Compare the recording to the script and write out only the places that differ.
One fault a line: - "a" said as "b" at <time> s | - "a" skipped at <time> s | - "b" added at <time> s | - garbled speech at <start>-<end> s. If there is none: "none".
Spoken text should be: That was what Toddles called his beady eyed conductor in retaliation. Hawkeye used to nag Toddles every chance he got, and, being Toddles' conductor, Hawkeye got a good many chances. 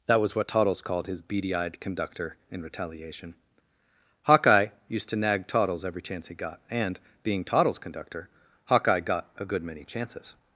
none